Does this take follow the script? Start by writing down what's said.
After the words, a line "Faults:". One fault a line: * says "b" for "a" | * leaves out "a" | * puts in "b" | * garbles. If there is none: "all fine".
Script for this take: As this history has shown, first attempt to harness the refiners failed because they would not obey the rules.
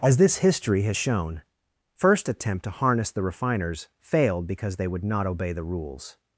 As this history has shown, first attempt to harness the refiners failed because they would not obey the rules.
Faults:
all fine